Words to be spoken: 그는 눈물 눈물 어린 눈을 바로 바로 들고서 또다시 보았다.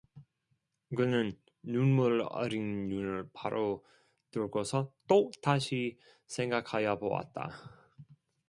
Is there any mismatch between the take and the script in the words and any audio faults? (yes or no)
yes